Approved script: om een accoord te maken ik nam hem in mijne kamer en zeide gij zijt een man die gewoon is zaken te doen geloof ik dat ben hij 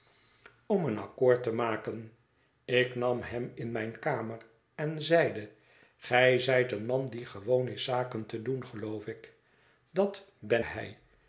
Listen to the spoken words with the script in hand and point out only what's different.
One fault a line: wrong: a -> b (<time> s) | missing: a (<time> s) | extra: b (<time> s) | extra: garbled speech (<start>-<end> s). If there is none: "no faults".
no faults